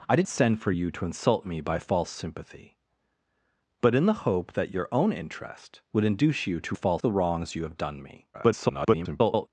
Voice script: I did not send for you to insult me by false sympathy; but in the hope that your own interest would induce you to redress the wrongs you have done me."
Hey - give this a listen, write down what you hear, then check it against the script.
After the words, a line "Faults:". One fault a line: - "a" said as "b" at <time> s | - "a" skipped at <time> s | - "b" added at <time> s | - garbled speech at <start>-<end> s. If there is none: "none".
I did send for you to insult me by false sympathy; but in the hope that your own interest would induce you to false the wrongs you have done me." [garbled]
Faults:
- "not" skipped at 0.3 s
- "redress" said as "false" at 6.7 s
- garbled speech at 8.3-9.5 s